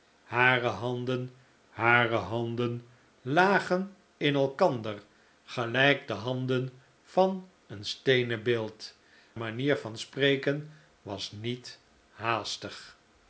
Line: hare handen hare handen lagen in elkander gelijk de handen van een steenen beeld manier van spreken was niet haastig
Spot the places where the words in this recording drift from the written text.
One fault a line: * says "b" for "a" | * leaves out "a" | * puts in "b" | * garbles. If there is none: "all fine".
all fine